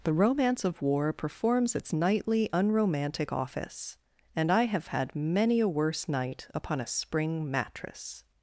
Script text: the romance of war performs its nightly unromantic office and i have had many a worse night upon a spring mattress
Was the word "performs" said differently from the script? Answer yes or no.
no